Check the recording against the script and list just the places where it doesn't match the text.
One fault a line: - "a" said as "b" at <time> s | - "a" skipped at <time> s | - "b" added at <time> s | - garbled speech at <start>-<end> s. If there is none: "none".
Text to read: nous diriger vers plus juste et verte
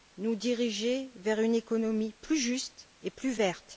- "une économie" added at 1.4 s
- "plus" added at 3.1 s